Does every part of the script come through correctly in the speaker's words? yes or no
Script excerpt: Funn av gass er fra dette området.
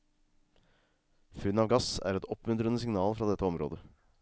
no